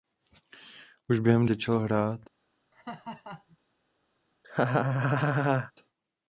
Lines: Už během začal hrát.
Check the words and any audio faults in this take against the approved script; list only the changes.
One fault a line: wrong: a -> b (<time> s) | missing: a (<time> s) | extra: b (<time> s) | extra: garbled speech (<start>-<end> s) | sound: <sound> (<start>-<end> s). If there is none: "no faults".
sound: laugh (2.7-3.6 s)
sound: laugh (4.4-5.7 s)